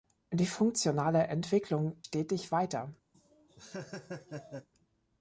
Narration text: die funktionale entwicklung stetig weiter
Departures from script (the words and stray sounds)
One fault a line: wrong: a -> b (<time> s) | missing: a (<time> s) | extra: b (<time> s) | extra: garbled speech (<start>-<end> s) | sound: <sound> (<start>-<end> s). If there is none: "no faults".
sound: laugh (3.1-4.7 s)